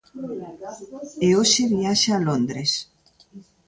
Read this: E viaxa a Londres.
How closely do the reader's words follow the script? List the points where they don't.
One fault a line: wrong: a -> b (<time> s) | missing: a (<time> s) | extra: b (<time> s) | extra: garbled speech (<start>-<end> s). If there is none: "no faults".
extra: hoxe (1.4 s)